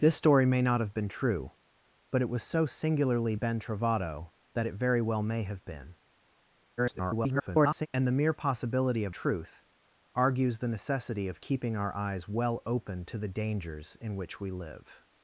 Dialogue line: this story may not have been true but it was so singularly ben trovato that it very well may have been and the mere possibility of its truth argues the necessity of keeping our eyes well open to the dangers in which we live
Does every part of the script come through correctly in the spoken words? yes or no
no